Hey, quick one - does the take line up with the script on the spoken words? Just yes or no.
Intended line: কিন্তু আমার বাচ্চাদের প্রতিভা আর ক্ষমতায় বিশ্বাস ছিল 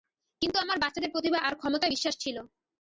yes